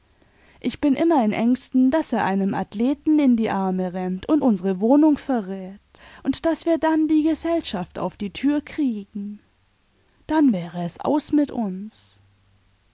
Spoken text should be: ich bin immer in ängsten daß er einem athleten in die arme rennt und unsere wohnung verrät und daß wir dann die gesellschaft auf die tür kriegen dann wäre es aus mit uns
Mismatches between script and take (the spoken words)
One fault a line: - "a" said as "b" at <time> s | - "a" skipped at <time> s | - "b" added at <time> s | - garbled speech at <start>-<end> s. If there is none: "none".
none